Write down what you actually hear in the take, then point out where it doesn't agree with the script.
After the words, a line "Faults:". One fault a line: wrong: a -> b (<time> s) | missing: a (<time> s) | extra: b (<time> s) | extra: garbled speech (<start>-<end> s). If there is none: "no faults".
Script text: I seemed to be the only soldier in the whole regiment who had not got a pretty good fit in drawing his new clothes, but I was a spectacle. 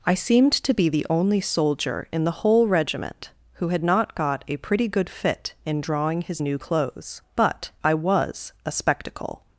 I seemed to be the only soldier in the whole regiment who had not got a pretty good fit in drawing his new clothes, but I was a spectacle.
Faults:
no faults